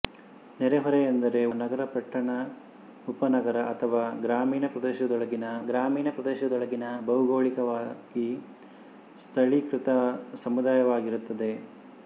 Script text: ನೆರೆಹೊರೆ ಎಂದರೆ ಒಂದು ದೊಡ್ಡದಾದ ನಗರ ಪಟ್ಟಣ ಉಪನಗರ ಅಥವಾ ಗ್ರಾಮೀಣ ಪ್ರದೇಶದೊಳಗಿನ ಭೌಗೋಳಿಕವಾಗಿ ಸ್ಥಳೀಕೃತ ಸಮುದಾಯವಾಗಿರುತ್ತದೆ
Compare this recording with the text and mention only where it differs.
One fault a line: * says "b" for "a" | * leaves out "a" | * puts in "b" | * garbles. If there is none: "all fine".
* leaves out "ಒಂದು ದೊಡ್ಡದಾದ"
* puts in "ಗ್ರಾಮೀಣ ಪ್ರದೇಶದೊಳಗಿನ"